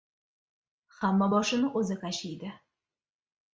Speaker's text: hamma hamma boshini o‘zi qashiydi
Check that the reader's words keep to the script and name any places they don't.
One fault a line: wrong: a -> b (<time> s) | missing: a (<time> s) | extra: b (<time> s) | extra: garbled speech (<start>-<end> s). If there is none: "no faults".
missing: hamma (1.3 s)